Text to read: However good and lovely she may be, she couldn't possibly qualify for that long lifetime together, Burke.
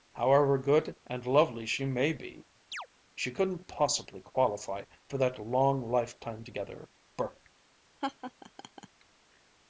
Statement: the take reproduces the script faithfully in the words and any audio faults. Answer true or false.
false